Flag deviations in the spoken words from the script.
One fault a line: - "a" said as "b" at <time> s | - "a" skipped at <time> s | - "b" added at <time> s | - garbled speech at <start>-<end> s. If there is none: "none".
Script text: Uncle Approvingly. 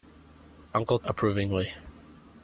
none